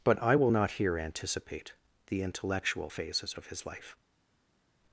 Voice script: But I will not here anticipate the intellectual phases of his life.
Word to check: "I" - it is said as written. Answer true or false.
true